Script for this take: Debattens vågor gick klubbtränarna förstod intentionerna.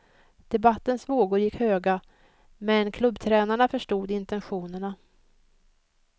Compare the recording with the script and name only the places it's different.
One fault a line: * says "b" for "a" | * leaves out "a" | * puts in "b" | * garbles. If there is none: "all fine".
* puts in "höga men"